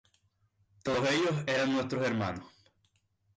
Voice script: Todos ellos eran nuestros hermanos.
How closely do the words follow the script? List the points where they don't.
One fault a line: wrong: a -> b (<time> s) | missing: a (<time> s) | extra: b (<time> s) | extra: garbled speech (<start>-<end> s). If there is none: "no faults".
no faults